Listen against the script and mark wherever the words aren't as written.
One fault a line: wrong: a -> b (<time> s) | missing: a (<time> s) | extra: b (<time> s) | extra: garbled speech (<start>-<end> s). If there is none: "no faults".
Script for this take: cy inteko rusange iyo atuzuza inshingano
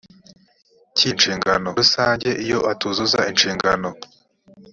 wrong: inteko -> inshingano (1.1 s)